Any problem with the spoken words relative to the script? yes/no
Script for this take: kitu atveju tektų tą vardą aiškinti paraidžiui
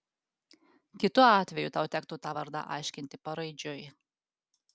yes